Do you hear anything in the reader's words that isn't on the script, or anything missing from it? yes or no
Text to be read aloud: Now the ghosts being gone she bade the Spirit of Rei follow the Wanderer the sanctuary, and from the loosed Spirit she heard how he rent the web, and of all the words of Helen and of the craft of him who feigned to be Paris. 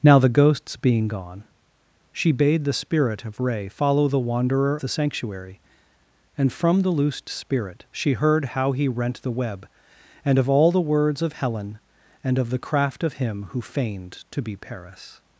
no